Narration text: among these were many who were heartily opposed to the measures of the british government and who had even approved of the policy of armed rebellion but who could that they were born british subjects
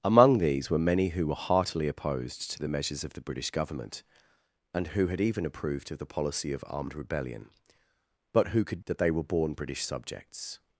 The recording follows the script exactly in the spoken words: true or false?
true